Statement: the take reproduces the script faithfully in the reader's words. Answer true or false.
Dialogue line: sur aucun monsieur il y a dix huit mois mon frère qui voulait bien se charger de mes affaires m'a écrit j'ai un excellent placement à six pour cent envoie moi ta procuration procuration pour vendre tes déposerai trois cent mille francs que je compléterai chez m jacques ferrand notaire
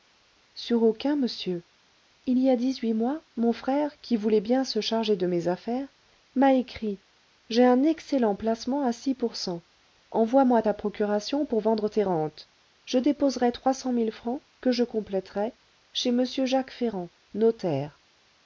false